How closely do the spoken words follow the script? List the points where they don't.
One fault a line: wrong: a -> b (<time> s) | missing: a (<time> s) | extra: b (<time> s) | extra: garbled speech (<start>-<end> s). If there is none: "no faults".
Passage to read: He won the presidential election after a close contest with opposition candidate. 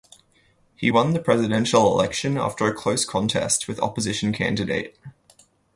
no faults